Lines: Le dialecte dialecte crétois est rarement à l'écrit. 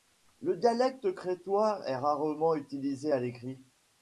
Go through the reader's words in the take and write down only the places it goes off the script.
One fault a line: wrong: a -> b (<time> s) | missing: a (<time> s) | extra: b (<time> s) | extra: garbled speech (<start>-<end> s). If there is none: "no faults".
missing: dialecte (1.1 s)
extra: utilisé (2.5 s)